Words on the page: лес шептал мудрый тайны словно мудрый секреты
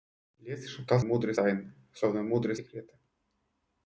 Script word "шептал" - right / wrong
right